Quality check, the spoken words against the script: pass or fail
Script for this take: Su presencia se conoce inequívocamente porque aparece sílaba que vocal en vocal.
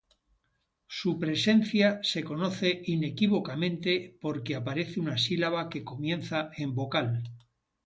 fail